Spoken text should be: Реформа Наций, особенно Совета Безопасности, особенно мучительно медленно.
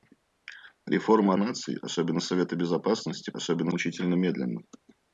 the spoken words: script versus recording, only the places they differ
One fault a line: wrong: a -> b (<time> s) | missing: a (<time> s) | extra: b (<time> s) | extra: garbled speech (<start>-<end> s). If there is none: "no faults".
no faults